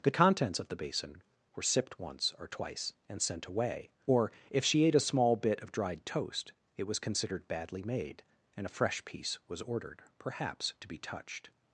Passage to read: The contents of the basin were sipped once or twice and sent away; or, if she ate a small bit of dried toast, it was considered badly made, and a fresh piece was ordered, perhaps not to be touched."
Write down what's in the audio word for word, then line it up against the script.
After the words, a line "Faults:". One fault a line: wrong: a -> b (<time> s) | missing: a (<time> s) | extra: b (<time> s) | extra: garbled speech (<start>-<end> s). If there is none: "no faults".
The contents of the basin were sipped once or twice and sent away; or, if she ate a small bit of dried toast, it was considered badly made, and a fresh piece was ordered, perhaps to be touched."
Faults:
missing: not (10.7 s)